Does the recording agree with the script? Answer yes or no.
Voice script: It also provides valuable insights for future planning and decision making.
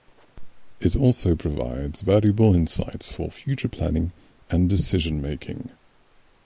yes